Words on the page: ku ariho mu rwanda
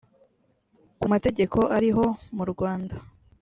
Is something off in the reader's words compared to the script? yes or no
yes